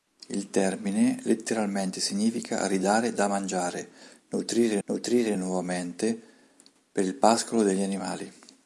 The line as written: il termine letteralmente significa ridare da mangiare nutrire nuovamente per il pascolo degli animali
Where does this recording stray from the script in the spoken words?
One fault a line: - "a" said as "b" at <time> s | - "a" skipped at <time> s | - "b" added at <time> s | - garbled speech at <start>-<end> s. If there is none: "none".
- "nutrire" added at 4.9 s